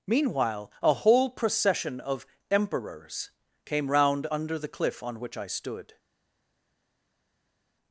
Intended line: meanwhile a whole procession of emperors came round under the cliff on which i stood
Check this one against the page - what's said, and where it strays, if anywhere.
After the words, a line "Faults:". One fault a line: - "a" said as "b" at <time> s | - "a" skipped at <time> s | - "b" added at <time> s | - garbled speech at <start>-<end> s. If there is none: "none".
meanwhile a whole procession of emperors came round under the cliff on which i stood
Faults:
none